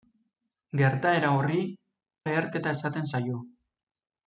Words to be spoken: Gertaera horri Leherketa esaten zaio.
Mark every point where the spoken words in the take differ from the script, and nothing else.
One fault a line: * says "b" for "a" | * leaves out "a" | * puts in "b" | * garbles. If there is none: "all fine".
all fine